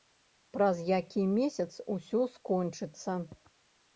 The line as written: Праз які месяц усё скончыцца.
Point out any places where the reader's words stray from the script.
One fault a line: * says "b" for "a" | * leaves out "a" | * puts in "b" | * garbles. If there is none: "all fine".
all fine